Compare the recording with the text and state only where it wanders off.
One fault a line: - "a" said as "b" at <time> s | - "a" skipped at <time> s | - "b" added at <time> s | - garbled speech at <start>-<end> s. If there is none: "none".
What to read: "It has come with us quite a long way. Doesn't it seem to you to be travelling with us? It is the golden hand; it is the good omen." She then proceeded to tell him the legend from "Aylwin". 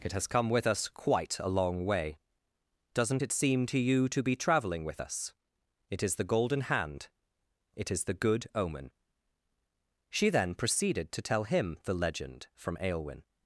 none